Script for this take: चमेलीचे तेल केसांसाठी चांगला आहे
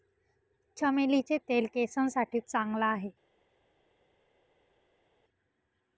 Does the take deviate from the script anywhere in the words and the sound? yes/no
no